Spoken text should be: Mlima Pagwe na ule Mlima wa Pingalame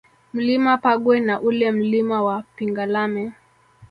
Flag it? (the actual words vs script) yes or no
no